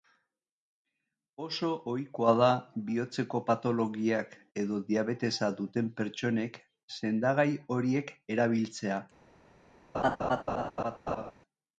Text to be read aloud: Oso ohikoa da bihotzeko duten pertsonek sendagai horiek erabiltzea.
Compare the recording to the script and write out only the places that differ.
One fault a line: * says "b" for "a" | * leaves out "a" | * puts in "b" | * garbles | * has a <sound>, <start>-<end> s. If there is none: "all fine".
* puts in "patologiak edo diabetesa"
* has a laugh, 9.9-11.3 s